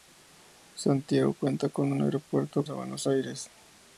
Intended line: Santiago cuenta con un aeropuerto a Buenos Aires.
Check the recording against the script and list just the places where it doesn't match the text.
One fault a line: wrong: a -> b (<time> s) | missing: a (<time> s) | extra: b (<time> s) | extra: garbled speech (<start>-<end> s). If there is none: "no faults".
no faults